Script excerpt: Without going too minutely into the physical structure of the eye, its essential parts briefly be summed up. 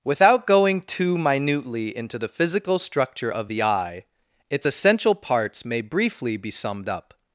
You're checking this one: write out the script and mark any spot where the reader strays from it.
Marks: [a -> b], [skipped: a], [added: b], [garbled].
Without going too minutely into the physical structure of the eye, its essential parts [added: may] briefly be summed up.